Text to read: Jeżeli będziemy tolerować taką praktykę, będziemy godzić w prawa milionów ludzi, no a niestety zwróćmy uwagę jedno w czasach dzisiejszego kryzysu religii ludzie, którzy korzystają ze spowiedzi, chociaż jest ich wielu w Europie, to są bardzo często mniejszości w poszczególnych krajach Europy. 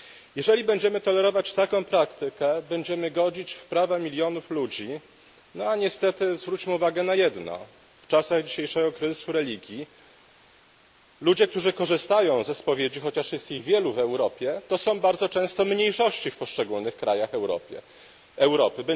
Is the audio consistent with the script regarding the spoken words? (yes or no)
no